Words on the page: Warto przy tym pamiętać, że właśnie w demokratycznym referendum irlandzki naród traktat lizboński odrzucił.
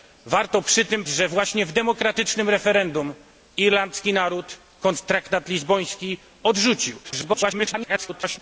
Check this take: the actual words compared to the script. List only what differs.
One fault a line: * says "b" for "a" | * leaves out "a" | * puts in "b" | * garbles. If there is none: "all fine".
* leaves out "pamiętać"
* garbles